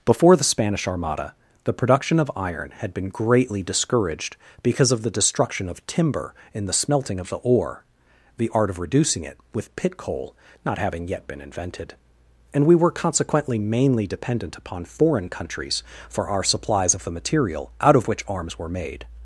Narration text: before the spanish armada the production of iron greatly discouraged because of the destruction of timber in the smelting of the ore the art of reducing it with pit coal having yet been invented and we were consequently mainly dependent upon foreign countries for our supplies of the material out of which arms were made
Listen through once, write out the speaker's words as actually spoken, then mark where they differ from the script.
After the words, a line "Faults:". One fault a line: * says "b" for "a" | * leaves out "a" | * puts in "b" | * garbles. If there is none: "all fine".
before the spanish armada the production of iron had been greatly discouraged because of the destruction of timber in the smelting of the ore the art of reducing it with pit coal not having yet been invented and we were consequently mainly dependent upon foreign countries for our supplies of the material out of which arms were made
Faults:
* puts in "had been"
* puts in "not"